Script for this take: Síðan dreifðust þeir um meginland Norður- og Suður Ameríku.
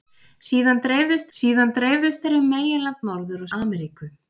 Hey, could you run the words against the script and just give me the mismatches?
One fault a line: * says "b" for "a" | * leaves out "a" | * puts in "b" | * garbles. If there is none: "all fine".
* puts in "síðan dreifðust"
* leaves out "Suður"